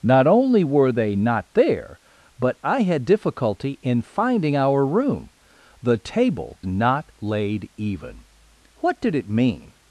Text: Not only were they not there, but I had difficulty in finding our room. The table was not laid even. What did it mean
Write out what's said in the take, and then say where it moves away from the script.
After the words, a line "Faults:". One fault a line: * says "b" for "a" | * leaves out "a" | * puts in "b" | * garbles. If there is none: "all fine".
Not only were they not there, but I had difficulty in finding our room. The table not laid even. What did it mean
Faults:
* leaves out "was"